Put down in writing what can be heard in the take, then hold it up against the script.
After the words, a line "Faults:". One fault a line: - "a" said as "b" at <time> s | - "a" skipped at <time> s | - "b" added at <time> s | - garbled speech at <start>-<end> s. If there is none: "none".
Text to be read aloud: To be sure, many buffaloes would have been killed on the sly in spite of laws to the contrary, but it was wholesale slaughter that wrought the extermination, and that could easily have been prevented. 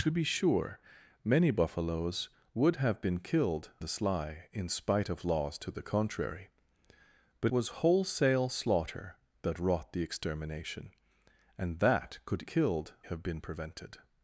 To be sure, many buffaloes would have been killed the sly in spite of laws to the contrary, but was wholesale slaughter that wrought the extermination, and that could killed have been prevented.
Faults:
- "on" skipped at 3.7 s
- "it" skipped at 7.5 s
- "easily" said as "killed" at 12.4 s